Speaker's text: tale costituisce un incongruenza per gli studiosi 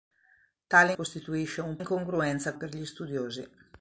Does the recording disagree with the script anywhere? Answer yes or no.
no